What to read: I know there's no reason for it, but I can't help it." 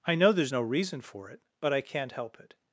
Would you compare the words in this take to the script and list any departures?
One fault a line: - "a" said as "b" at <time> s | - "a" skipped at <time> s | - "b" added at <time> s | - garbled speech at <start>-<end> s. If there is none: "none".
none